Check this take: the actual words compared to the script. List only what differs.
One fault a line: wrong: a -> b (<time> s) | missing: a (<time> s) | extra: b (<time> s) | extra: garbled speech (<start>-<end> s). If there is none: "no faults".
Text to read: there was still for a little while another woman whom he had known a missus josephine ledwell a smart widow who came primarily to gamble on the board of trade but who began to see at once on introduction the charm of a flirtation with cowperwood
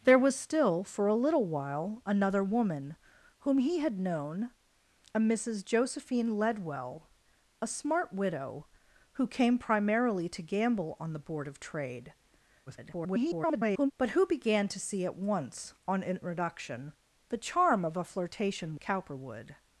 extra: garbled speech (12.7-13.9 s)
missing: with (18.8 s)